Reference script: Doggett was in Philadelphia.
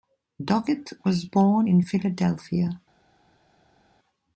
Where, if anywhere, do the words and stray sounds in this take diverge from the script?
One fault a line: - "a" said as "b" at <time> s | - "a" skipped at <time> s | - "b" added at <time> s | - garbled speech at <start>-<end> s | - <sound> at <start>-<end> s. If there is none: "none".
- "born" added at 1.2 s